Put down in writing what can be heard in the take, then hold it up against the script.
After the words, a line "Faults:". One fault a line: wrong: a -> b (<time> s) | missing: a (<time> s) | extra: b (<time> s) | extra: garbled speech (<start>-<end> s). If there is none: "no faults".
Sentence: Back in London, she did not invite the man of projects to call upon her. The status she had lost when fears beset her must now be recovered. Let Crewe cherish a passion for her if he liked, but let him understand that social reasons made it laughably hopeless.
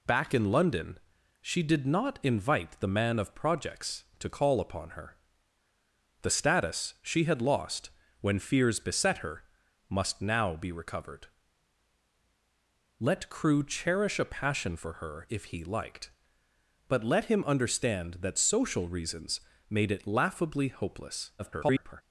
Back in London, she did not invite the man of projects to call upon her. The status she had lost when fears beset her must now be recovered. Let Crewe cherish a passion for her if he liked, but let him understand that social reasons made it laughably hopeless. [garbled]
Faults:
extra: garbled speech (21.4-22.0 s)